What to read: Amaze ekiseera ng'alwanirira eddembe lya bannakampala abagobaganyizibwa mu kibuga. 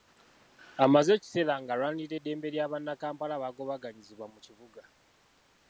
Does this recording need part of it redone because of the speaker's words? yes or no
no